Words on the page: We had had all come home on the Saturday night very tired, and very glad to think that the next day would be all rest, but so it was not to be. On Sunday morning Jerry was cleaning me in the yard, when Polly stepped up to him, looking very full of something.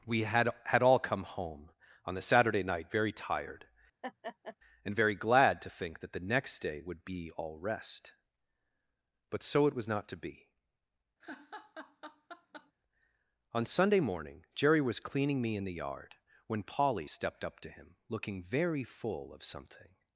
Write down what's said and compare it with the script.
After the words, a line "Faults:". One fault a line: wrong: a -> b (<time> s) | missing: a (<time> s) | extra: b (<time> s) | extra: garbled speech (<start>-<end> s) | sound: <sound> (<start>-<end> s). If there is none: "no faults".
We had had all come home on the Saturday night very tired, and very glad to think that the next day would be all rest, but so it was not to be. On Sunday morning Jerry was cleaning me in the yard, when Polly stepped up to him, looking very full of something.
Faults:
sound: laugh (4.0-4.6 s)
sound: laugh (11.2-12.7 s)